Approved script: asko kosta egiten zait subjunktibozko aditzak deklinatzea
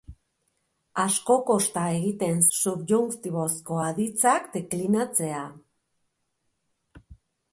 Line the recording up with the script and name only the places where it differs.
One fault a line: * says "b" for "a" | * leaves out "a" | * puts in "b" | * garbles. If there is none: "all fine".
* leaves out "zait"